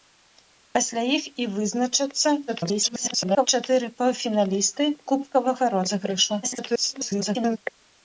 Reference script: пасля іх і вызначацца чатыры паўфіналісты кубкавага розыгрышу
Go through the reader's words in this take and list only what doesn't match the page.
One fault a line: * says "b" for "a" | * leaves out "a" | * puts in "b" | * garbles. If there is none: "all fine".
* garbles
* garbles